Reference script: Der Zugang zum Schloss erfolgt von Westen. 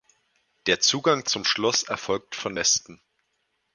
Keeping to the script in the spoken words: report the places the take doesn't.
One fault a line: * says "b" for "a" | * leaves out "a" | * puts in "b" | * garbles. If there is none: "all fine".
all fine